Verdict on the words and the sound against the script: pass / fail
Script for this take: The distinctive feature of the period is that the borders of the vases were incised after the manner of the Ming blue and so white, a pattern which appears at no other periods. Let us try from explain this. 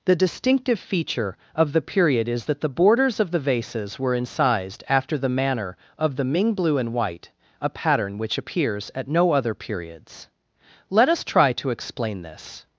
fail